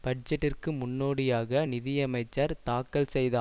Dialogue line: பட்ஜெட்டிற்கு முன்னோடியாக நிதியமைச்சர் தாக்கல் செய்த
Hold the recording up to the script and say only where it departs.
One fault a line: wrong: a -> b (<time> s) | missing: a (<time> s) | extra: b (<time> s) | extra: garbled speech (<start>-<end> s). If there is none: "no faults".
no faults